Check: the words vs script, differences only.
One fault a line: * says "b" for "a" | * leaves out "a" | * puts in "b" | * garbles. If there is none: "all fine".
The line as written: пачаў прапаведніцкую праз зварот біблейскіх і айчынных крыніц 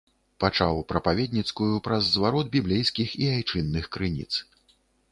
all fine